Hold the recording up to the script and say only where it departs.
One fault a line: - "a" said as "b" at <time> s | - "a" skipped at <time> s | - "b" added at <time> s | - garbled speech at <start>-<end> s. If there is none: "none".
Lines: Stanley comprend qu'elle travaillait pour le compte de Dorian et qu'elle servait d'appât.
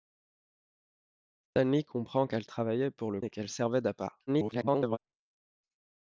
- "compte de Dorian" skipped at 3.2 s
- garbled speech at 4.3-5.0 s